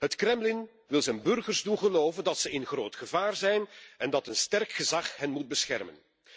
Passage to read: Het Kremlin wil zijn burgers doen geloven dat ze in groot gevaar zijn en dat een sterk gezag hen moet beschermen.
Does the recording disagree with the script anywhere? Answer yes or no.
no